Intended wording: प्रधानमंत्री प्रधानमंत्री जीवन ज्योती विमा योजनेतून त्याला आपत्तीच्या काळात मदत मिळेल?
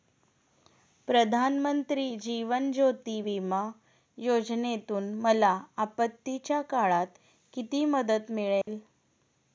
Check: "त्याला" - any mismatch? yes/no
yes